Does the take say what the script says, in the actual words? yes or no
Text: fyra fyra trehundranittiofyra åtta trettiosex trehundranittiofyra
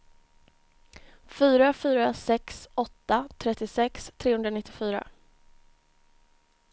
no